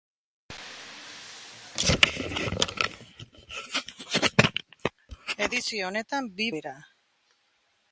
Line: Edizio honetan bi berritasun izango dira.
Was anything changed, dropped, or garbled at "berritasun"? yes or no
yes